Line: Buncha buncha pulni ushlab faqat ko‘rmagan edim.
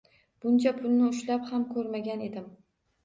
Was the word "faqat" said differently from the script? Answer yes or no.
yes